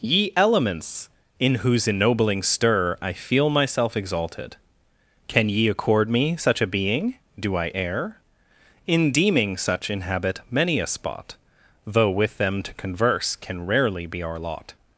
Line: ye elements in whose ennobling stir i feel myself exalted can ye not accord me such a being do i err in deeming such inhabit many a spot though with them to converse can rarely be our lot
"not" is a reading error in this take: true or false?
true